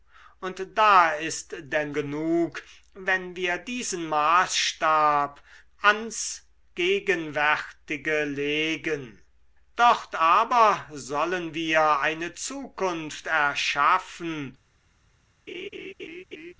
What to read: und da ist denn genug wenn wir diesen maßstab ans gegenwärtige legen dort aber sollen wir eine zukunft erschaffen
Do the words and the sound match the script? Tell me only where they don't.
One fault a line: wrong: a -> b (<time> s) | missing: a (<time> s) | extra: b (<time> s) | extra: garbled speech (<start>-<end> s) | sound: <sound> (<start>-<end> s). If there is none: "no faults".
sound: laugh (15.5-16.5 s)